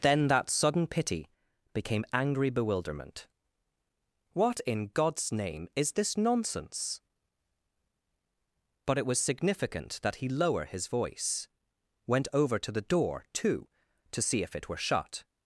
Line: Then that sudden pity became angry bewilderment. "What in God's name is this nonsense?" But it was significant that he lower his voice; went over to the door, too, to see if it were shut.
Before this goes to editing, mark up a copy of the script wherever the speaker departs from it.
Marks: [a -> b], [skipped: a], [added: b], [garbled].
Then that sudden pity became angry bewilderment. "What in God's name is this nonsense?" But it was significant that he lower his voice; went over to the door, too, to see if it were shut.